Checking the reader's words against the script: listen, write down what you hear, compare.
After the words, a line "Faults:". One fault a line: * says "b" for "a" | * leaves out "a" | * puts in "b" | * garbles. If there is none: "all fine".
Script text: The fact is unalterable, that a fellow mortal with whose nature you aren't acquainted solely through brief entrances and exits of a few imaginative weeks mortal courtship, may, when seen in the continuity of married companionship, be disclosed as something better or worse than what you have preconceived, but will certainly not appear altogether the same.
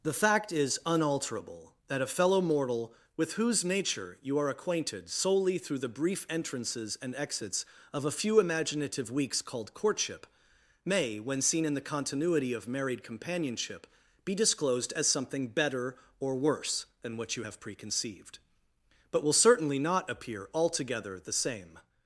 The fact is unalterable, that a fellow mortal with whose nature you are acquainted solely through the brief entrances and exits of a few imaginative weeks called courtship, may, when seen in the continuity of married companionship, be disclosed as something better or worse than what you have preconceived, but will certainly not appear altogether the same.
Faults:
* says "are" for "aren't"
* puts in "the"
* says "called" for "mortal"